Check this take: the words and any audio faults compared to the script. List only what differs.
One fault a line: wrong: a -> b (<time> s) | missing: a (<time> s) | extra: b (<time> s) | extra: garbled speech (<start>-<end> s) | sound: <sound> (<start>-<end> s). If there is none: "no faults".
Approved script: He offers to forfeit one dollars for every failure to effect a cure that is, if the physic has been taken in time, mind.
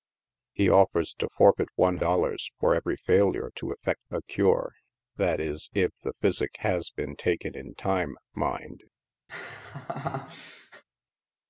sound: laugh (9.3-10.8 s)